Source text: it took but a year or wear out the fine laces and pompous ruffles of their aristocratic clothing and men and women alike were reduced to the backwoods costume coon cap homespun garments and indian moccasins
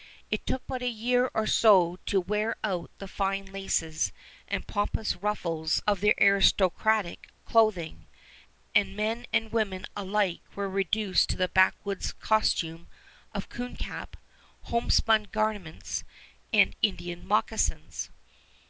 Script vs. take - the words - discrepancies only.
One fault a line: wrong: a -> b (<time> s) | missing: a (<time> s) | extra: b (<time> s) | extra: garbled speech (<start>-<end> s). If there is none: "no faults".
extra: so to (1.4 s)
extra: of (13.3 s)